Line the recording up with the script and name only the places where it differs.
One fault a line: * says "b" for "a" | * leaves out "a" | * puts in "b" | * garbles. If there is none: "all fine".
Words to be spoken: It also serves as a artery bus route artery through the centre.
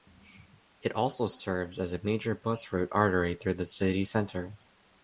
* says "major" for "artery"
* puts in "city"